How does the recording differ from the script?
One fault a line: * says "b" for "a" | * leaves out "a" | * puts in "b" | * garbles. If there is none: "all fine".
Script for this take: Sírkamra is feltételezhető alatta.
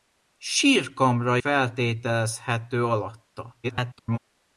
* leaves out "is"
* garbles